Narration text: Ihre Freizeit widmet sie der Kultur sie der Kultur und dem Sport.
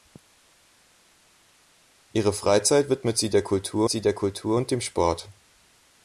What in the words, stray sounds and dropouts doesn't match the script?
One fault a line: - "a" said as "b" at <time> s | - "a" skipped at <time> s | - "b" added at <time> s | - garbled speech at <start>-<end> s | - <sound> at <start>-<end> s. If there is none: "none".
none